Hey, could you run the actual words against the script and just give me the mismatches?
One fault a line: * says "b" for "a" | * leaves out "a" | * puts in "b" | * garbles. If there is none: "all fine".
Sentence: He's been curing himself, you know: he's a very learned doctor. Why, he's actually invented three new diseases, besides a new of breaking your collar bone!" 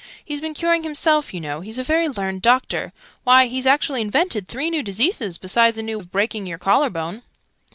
all fine